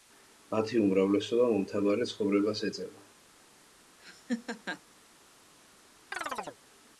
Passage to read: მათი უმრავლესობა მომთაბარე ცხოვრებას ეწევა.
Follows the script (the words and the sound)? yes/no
no